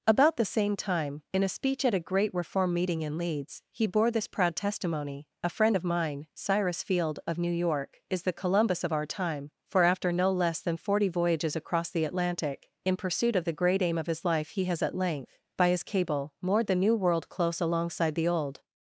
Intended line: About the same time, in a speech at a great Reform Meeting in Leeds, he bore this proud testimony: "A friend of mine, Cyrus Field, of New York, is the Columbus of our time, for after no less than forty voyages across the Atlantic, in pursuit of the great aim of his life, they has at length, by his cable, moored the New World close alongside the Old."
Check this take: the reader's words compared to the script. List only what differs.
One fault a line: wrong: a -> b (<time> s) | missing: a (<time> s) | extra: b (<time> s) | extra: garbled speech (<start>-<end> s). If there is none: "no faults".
wrong: they -> he (14.5 s)